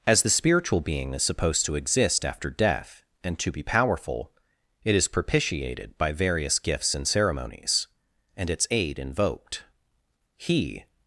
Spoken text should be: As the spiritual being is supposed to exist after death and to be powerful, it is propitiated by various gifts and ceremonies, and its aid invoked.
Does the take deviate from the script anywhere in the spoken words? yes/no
yes